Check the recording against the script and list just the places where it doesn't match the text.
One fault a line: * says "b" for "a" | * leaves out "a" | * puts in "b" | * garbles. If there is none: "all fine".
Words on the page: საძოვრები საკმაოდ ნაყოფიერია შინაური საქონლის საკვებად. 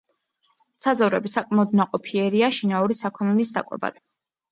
all fine